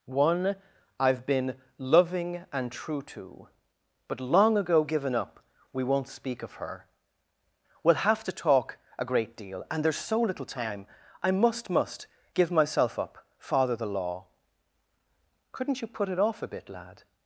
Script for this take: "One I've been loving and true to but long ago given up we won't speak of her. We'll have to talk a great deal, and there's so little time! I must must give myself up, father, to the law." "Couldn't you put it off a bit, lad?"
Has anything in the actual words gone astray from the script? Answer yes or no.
yes